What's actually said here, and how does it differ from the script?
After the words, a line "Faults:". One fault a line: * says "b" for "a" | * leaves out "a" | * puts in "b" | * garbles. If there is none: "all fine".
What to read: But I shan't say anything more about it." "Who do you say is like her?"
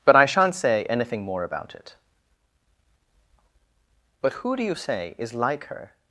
But I shan't say anything more about it." "But who do you say is like her?"
Faults:
* puts in "But"